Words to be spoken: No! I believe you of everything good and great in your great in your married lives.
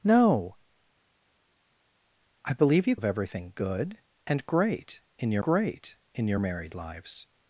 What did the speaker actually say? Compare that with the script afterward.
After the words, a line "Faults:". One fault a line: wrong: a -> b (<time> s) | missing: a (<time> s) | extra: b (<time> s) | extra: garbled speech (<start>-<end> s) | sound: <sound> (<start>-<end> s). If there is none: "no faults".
No! I believe you of everything good and great in your great in your married lives.
Faults:
no faults